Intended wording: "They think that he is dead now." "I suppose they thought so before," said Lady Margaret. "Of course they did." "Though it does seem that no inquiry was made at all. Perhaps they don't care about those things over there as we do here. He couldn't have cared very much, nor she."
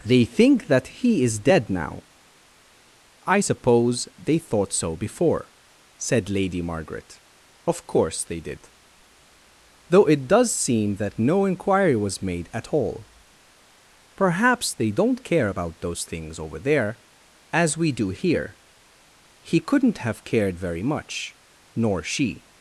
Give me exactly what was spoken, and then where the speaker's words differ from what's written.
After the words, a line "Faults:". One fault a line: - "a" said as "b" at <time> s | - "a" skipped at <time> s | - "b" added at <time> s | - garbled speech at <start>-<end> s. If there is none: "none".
"They think that he is dead now." "I suppose they thought so before," said Lady Margaret. "Of course they did." "Though it does seem that no inquiry was made at all. Perhaps they don't care about those things over there as we do here. He couldn't have cared very much, nor she."
Faults:
none